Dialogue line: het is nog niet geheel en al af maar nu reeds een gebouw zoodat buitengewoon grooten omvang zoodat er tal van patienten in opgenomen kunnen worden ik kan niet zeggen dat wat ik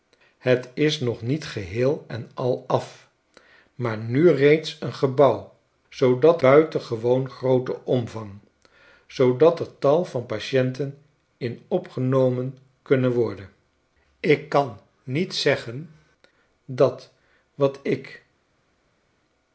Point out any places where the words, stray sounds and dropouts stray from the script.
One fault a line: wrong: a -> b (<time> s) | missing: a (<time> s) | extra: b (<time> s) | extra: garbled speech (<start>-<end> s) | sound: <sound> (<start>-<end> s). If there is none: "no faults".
no faults